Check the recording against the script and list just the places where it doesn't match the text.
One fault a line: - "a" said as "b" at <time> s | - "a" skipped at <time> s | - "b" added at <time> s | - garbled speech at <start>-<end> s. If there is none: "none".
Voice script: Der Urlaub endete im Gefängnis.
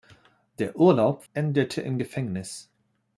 none